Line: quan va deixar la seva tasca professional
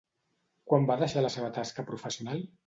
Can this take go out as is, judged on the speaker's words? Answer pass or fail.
pass